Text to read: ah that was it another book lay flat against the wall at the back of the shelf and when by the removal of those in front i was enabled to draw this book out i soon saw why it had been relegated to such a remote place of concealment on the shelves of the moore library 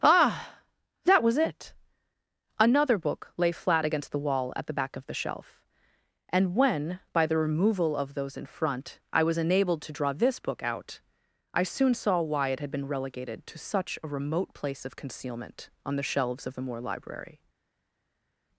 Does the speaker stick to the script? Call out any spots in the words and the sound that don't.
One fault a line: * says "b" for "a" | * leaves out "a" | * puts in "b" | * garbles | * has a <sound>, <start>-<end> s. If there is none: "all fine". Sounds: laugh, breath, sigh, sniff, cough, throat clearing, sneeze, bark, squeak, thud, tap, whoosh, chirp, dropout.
all fine